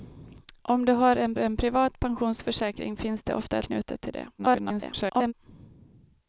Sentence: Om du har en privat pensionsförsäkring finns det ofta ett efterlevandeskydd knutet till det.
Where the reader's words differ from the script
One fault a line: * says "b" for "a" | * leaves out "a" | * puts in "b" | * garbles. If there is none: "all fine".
* puts in "en"
* leaves out "ett efterlevandeskydd"
* garbles